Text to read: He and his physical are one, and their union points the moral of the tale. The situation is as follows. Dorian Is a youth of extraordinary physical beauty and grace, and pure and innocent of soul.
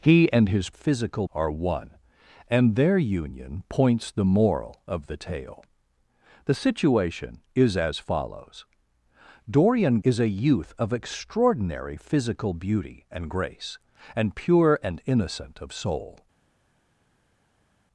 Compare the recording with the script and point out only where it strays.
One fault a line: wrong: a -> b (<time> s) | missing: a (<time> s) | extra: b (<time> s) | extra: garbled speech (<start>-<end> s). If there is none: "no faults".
no faults